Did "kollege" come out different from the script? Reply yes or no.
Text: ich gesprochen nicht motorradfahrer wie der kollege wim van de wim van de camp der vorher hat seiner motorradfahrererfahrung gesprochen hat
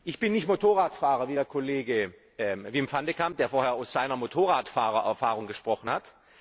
no